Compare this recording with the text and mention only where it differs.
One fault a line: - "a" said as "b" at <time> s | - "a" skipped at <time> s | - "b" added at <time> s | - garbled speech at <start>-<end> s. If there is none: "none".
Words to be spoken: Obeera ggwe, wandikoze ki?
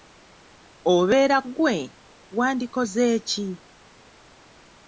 none